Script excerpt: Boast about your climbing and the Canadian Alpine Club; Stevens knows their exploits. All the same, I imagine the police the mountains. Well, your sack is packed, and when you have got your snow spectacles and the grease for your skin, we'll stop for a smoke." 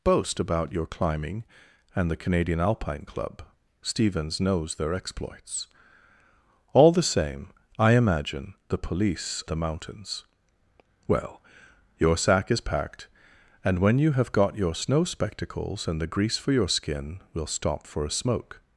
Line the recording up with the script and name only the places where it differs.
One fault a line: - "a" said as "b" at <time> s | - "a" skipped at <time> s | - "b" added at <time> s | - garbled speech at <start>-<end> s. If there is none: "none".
none